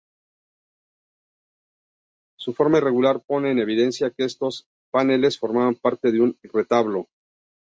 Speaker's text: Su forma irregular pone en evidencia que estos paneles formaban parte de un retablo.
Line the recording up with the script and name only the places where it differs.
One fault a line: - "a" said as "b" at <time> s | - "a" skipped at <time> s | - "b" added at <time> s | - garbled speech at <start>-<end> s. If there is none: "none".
none